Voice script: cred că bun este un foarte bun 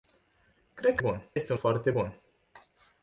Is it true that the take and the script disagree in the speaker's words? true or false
false